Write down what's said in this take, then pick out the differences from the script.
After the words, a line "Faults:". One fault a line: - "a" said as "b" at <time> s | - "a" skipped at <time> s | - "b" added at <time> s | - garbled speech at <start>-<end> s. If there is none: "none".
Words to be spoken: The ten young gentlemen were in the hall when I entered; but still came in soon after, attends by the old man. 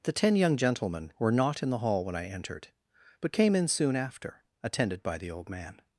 The ten young gentlemen were not in the hall when I entered; but came in soon after, attended by the old man.
Faults:
- "not" added at 1.3 s
- "still" skipped at 3.3 s
- "attends" said as "attended" at 4.6 s